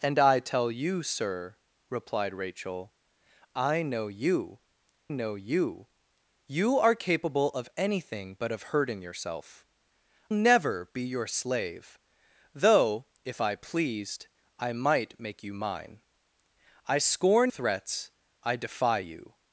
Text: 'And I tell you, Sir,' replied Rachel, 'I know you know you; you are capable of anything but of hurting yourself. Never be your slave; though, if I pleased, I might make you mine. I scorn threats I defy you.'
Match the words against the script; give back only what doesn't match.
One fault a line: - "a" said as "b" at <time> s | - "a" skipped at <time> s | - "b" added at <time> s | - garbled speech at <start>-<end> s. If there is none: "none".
none